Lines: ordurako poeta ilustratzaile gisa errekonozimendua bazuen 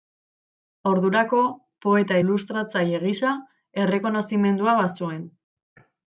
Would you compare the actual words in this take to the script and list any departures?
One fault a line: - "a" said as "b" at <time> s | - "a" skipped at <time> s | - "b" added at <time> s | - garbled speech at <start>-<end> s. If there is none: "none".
none